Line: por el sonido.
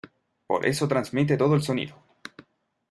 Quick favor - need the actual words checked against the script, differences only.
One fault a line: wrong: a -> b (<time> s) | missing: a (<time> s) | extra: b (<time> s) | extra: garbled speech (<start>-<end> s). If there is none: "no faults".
extra: eso transmite todo (0.7 s)